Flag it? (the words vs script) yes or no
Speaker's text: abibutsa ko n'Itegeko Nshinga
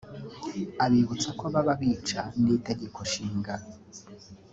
yes